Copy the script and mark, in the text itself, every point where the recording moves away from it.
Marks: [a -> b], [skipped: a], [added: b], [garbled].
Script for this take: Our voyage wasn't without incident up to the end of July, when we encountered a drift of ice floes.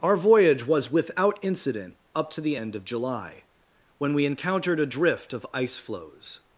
Our voyage [wasn't -> was] without incident up to the end of July, when we encountered a drift of ice floes.